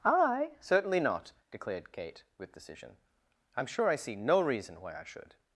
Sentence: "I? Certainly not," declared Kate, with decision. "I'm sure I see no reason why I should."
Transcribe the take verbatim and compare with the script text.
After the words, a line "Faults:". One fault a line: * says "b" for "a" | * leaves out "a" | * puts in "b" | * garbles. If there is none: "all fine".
"I? Certainly not," declared Kate, with decision. "I'm sure I see no reason why I should."
Faults:
all fine